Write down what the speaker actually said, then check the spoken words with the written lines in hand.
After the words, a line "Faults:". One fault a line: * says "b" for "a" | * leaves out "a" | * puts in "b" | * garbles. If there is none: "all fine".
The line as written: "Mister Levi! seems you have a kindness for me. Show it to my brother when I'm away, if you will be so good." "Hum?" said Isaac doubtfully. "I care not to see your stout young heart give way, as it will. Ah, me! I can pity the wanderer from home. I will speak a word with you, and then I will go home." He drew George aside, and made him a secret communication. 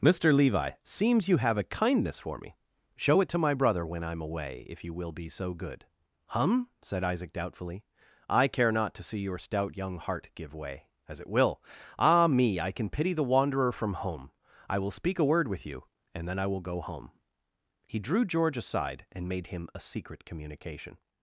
"Mister Levi! seems you have a kindness for me. Show it to my brother when I'm away, if you will be so good." "Hum?" said Isaac doubtfully. "I care not to see your stout young heart give way, as it will. Ah, me! I can pity the wanderer from home. I will speak a word with you, and then I will go home." He drew George aside, and made him a secret communication.
Faults:
all fine